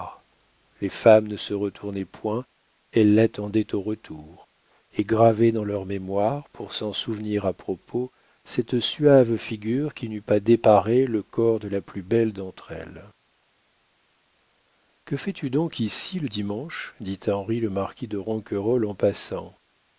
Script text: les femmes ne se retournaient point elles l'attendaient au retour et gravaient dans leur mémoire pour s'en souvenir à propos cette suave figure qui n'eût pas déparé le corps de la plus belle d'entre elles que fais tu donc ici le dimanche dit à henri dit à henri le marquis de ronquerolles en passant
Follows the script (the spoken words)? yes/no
no